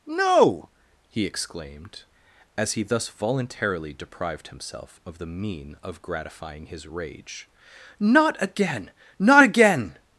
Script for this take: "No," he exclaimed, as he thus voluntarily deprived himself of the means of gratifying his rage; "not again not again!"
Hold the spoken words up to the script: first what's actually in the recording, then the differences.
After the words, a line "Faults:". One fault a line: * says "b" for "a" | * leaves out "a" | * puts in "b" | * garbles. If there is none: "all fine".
"No," he exclaimed, as he thus voluntarily deprived himself of the mean of gratifying his rage; "not again not again!"
Faults:
* says "mean" for "means"